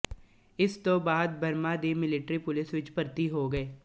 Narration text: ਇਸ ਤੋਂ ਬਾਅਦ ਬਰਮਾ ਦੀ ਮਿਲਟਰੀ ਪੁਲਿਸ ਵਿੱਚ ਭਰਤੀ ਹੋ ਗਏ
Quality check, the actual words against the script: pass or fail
pass